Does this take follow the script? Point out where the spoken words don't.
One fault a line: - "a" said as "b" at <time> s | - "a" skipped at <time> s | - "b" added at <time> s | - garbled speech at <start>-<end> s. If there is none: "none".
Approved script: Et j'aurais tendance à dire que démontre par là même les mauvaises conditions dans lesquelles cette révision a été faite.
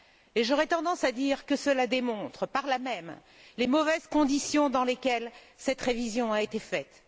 - "cela" added at 1.6 s